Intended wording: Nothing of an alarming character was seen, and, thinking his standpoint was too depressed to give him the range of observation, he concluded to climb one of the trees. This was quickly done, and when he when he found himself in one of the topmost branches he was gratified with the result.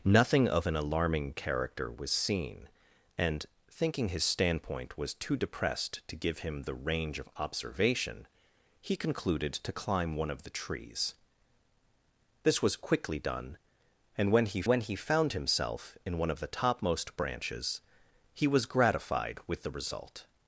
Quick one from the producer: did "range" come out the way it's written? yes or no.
yes